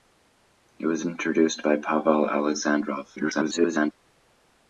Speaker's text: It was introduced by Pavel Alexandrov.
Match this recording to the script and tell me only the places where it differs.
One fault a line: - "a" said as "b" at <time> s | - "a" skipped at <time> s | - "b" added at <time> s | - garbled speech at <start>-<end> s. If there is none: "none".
- garbled speech at 3.2-3.9 s